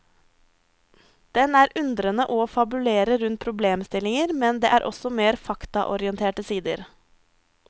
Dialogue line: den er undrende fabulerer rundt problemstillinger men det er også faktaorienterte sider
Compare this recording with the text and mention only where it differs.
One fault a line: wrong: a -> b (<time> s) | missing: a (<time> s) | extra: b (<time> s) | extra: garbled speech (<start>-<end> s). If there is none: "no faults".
extra: og (2.4 s)
extra: mer (5.2 s)